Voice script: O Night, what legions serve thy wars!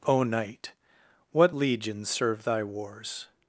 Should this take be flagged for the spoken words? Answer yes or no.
no